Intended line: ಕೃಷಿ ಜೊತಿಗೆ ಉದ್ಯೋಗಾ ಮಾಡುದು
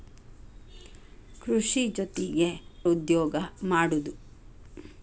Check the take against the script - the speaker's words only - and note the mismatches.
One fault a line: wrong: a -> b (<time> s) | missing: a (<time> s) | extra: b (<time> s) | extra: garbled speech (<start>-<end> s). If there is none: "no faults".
no faults